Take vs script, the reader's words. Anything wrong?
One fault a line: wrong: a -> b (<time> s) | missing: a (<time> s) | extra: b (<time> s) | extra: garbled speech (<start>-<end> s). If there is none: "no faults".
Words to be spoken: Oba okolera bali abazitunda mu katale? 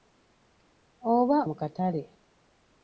missing: okolera bali abazitunda (1.4 s)